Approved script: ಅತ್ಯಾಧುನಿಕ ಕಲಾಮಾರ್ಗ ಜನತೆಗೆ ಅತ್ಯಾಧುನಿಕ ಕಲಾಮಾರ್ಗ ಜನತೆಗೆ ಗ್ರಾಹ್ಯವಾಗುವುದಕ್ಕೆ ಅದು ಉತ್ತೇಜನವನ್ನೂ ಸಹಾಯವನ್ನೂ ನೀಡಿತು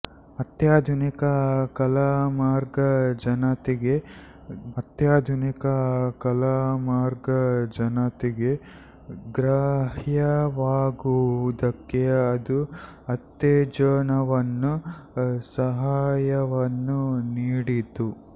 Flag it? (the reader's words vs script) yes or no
no